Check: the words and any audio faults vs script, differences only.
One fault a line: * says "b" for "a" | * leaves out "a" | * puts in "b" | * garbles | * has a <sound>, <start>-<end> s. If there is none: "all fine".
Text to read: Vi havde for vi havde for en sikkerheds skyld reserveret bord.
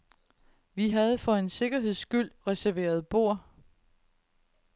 * leaves out "vi havde for"